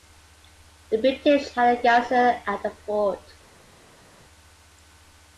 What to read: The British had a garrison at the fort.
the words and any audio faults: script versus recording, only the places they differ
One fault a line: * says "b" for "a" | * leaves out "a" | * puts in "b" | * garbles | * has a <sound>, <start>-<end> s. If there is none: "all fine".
all fine